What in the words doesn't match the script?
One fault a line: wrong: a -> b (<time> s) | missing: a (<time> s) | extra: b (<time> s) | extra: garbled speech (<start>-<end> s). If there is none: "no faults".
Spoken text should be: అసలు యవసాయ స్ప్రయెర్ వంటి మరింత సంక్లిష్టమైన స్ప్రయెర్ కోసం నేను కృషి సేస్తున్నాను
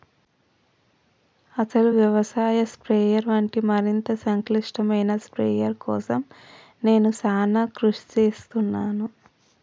extra: సానా (7.1 s)